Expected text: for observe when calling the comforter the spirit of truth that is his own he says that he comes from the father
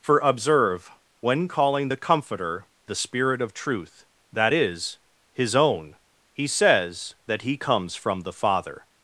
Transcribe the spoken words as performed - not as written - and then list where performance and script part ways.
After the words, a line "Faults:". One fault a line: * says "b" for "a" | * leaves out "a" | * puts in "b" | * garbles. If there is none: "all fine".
for observe when calling the comforter the spirit of truth that is his own he says that he comes from the father
Faults:
all fine